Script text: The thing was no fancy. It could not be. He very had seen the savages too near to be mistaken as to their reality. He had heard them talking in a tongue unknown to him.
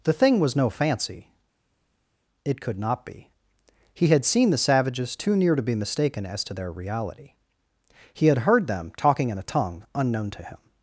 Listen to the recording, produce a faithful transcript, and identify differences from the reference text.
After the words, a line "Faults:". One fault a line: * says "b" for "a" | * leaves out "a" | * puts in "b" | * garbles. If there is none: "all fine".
The thing was no fancy. It could not be. He had seen the savages too near to be mistaken as to their reality. He had heard them talking in a tongue unknown to him.
Faults:
* leaves out "very"